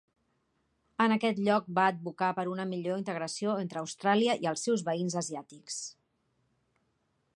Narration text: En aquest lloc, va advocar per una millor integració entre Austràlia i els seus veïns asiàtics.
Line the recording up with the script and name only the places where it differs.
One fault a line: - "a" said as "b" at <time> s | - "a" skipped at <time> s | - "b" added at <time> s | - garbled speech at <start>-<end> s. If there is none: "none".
none